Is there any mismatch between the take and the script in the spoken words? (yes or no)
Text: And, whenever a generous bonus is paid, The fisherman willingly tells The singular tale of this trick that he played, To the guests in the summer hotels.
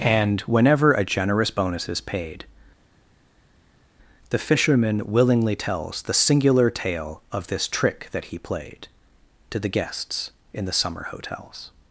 no